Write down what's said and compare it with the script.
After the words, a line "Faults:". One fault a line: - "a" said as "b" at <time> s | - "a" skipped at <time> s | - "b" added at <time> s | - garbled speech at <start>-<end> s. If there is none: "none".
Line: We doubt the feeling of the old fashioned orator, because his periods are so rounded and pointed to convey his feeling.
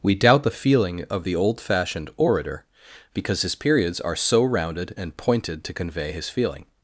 We doubt the feeling of the old fashioned orator, because his periods are so rounded and pointed to convey his feeling.
Faults:
none